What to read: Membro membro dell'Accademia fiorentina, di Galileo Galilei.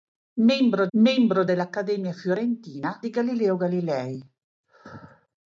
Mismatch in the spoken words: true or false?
false